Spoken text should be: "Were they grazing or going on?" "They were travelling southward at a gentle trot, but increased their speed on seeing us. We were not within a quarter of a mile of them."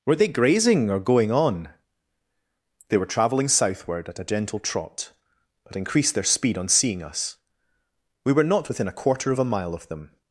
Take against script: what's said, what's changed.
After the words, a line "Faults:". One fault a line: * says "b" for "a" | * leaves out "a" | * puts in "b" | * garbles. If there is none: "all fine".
"Were they grazing or going on?" "They were travelling southward at a gentle trot, but increased their speed on seeing us. We were not within a quarter of a mile of them."
Faults:
all fine